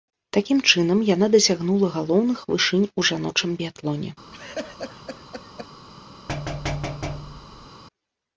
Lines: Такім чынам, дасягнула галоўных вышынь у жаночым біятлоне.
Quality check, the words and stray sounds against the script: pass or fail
fail